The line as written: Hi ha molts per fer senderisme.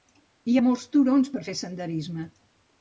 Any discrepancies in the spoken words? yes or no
yes